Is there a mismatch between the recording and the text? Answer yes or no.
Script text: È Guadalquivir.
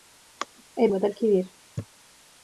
no